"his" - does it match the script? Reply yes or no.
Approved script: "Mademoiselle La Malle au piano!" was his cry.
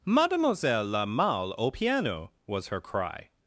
no